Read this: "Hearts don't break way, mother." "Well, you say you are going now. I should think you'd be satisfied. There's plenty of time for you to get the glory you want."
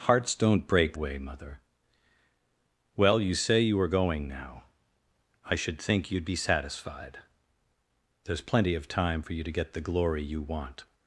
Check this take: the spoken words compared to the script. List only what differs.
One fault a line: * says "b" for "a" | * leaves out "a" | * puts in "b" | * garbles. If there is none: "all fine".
all fine